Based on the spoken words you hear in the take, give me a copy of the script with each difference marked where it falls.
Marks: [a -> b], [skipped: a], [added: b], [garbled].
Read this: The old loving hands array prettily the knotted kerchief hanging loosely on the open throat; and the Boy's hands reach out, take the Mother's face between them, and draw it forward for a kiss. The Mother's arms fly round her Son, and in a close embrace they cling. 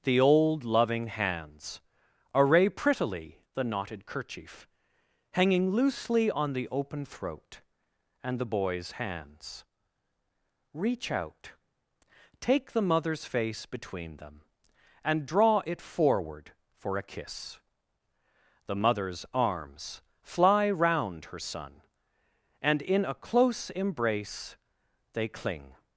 The old loving hands array prettily the knotted kerchief hanging loosely on the open throat; and the Boy's hands reach out, take the Mother's face between them, and draw it forward for a kiss. The Mother's arms fly round her Son, and in a close embrace they cling.